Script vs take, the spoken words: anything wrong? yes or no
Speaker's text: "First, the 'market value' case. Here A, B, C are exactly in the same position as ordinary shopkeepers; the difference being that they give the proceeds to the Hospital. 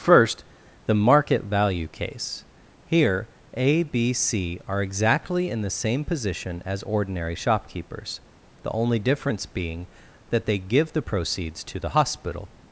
yes